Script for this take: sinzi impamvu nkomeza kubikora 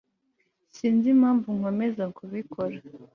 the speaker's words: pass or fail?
pass